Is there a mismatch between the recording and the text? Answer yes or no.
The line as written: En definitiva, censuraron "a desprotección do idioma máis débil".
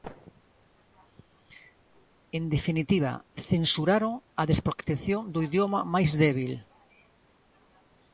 no